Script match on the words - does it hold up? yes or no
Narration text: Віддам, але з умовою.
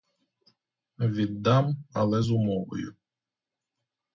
yes